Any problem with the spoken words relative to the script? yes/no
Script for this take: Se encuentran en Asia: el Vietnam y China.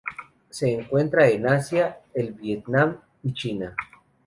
no